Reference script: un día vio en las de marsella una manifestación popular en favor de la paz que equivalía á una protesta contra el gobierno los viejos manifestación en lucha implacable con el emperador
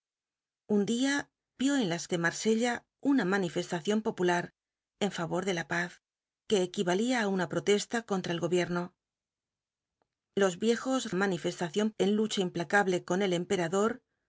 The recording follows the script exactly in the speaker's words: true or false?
true